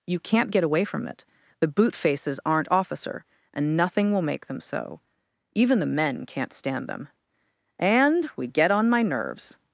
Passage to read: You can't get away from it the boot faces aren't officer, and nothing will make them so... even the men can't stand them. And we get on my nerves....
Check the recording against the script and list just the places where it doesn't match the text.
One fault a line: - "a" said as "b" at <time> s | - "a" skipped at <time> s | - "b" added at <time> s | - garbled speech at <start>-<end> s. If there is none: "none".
none